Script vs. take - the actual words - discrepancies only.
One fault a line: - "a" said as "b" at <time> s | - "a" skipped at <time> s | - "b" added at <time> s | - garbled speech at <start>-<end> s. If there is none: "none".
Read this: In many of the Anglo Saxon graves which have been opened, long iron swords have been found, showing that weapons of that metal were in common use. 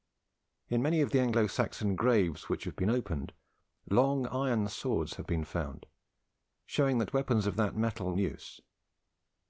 - "were in common" skipped at 8.2 s